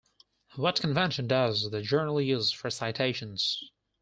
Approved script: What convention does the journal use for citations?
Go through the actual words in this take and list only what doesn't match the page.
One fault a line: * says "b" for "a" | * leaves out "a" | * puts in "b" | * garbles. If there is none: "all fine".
all fine